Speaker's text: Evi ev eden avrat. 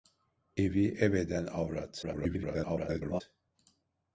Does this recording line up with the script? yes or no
no